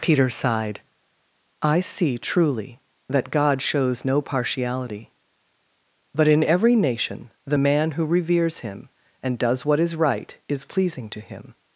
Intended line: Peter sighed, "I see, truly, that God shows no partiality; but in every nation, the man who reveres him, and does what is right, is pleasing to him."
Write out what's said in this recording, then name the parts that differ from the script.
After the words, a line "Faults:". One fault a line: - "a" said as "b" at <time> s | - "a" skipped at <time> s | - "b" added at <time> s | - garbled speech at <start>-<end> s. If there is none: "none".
Peter sighed, "I see, truly, that God shows no partiality; but in every nation, the man who reveres him, and does what is right, is pleasing to him."
Faults:
none